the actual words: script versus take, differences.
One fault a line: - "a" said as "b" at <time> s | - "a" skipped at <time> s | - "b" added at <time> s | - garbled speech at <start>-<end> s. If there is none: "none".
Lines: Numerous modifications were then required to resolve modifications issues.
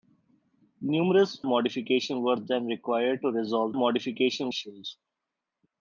none